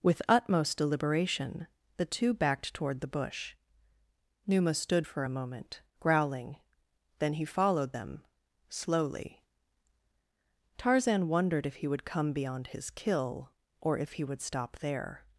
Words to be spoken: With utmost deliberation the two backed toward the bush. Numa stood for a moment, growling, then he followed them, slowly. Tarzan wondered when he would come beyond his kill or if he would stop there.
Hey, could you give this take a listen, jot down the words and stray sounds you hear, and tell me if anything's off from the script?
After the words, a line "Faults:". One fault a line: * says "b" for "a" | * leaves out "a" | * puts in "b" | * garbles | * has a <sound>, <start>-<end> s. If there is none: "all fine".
With utmost deliberation the two backed toward the bush. Numa stood for a moment, growling, then he followed them, slowly. Tarzan wondered if he would come beyond his kill or if he would stop there.
Faults:
* says "if" for "when"